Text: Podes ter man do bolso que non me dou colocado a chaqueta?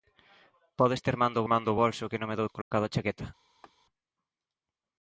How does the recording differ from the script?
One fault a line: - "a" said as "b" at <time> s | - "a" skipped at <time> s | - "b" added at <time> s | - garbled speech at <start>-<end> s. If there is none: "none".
- "man do" added at 1.5 s